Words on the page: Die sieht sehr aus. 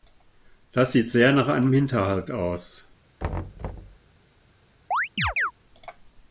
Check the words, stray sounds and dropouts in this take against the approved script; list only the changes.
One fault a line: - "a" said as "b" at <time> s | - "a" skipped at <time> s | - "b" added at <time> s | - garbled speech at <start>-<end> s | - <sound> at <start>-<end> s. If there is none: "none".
- "Die" said as "Das" at 0.7 s
- "nach einem Hinterhalt" added at 1.3 s
- thud at 3.2-4.0 s
- chirp at 4.9-5.5 s